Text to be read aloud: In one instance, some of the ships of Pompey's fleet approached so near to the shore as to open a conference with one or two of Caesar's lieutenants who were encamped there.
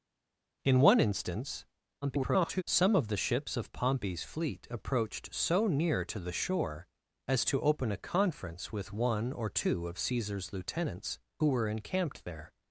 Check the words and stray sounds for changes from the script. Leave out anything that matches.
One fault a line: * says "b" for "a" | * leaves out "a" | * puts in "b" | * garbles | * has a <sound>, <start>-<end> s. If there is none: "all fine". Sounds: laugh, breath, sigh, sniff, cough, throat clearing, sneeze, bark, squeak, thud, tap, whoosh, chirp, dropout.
* garbles